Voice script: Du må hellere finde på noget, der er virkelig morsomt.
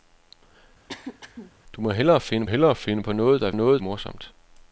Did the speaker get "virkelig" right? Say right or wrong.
wrong